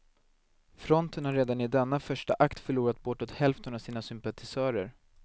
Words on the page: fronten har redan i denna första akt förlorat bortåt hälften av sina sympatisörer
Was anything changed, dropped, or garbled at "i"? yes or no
no